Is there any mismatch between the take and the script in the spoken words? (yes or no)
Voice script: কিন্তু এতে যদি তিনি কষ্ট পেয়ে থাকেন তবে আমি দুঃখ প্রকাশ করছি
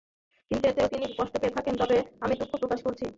yes